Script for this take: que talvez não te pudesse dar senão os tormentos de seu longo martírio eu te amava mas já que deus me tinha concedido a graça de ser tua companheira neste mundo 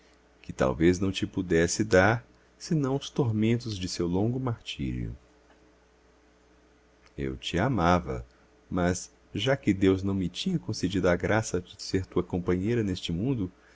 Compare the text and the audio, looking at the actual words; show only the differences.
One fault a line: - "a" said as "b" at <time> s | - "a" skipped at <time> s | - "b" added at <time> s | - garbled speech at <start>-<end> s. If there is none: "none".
- "não" added at 10.0 s